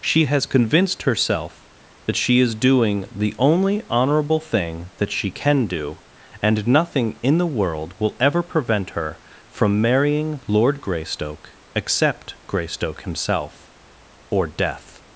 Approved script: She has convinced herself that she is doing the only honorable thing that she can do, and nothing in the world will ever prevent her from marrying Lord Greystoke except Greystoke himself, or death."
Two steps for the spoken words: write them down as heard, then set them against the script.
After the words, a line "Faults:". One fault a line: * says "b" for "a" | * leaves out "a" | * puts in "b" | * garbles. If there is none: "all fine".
She has convinced herself that she is doing the only honorable thing that she can do, and nothing in the world will ever prevent her from marrying Lord Greystoke except Greystoke himself, or death."
Faults:
all fine